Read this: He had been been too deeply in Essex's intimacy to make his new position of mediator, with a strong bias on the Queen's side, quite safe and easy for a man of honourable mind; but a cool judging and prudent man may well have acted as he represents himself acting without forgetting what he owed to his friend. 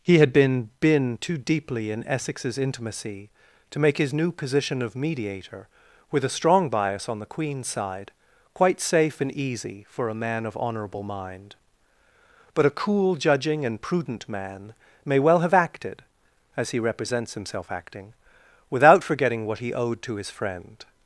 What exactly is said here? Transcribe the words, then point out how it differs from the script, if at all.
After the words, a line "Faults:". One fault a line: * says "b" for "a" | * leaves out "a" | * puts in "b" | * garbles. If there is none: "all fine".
He had been been too deeply in Essex's intimacy to make his new position of mediator, with a strong bias on the Queen's side, quite safe and easy for a man of honourable mind; but a cool judging and prudent man may well have acted as he represents himself acting without forgetting what he owed to his friend.
Faults:
all fine